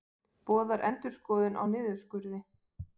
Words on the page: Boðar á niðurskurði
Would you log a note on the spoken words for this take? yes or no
yes